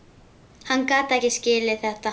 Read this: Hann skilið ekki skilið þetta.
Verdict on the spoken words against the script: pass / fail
fail